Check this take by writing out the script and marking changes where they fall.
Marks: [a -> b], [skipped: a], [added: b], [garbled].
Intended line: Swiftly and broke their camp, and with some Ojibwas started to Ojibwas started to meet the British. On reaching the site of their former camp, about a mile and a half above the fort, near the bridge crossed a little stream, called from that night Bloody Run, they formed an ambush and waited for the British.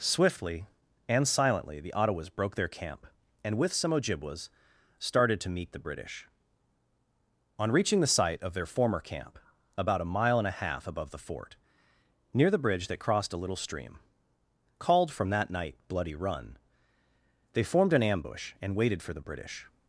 Swiftly and [added: silently the Ottawas] broke their camp, and with some Ojibwas started to [skipped: Ojibwas started to] meet the British. On reaching the site of their former camp, about a mile and a half above the fort, near the bridge [added: that] crossed a little stream, called from that night Bloody Run, they formed an ambush and waited for the British.